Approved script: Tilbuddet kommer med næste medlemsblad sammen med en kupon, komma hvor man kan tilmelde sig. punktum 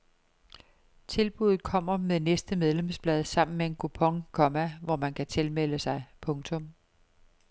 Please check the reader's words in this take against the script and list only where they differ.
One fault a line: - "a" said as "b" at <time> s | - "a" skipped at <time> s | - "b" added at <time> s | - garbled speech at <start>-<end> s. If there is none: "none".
none